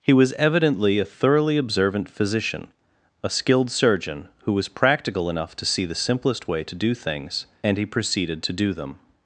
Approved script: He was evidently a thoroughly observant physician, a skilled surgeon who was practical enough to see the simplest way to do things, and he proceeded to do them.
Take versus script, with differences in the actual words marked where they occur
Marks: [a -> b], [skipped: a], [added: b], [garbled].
He was evidently a thoroughly observant physician, a skilled surgeon who was practical enough to see the simplest way to do things, and he proceeded to do them.